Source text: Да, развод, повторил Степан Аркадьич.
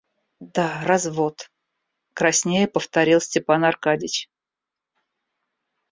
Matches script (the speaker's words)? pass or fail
fail